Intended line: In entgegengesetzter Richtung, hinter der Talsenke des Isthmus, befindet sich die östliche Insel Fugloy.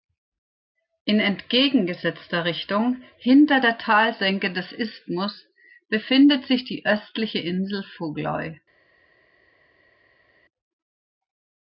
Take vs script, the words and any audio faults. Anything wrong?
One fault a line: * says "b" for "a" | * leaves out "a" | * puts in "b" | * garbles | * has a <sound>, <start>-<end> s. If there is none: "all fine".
all fine